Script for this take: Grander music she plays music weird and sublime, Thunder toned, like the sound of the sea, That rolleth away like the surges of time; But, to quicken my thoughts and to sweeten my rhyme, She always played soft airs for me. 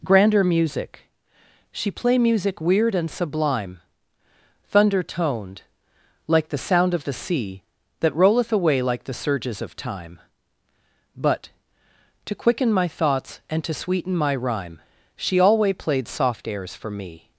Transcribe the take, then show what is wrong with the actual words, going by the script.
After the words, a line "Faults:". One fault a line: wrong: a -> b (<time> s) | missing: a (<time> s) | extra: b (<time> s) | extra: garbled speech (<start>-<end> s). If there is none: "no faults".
Grander music she play music weird and sublime, Thunder toned, like the sound of the sea, That rolleth away like the surges of time; But, to quicken my thoughts and to sweeten my rhyme, She alway played soft airs for me.
Faults:
wrong: plays -> play (1.9 s)
wrong: always -> alway (15.4 s)